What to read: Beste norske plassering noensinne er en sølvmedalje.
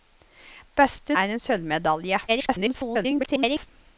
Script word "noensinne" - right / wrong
wrong